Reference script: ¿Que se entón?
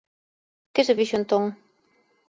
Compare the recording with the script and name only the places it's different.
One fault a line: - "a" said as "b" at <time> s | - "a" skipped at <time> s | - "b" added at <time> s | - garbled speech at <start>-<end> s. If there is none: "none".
- "fixo" added at 1.0 s